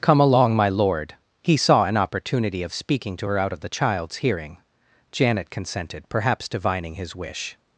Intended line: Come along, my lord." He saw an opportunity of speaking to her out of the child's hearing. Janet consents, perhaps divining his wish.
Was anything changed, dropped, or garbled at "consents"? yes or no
yes